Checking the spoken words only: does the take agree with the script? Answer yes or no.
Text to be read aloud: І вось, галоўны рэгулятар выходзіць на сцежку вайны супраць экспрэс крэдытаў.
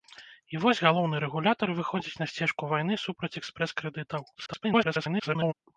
no